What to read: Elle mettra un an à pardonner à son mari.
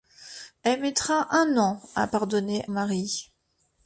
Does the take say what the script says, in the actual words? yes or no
no